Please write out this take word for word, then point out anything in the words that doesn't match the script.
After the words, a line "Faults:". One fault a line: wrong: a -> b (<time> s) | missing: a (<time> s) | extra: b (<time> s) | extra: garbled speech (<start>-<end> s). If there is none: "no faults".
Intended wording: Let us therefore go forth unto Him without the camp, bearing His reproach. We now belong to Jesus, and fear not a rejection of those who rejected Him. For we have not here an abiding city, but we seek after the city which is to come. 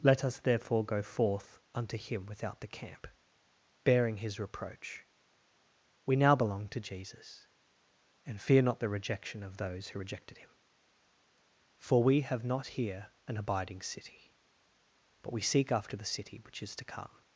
Let us therefore go forth unto Him without the camp, bearing His reproach. We now belong to Jesus, and fear not the rejection of those who rejected Him. For we have not here an abiding city, but we seek after the city which is to come.
Faults:
wrong: a -> the (8.8 s)